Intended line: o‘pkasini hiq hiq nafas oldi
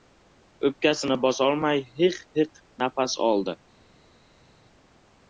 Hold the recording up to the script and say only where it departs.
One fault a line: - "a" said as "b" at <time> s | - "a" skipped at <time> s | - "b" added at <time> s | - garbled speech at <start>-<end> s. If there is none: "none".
- "bosolmay" added at 1.3 s